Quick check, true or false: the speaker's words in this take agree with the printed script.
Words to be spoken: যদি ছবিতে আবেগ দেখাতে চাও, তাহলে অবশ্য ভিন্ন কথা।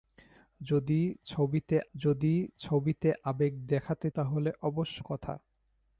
false